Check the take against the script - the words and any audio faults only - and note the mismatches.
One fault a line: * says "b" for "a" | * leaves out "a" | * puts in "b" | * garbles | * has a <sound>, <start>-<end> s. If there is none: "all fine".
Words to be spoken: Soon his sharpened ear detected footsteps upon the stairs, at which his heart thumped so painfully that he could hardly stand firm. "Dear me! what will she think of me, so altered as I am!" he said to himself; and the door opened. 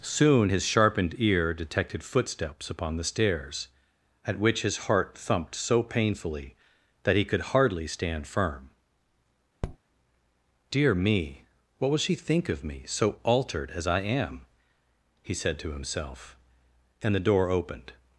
* has a tap, 9.6-9.8 s